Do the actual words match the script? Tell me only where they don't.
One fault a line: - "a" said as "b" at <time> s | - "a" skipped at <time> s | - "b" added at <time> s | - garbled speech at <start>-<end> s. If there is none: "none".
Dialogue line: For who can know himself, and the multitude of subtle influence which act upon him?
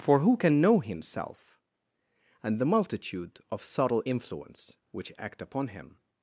none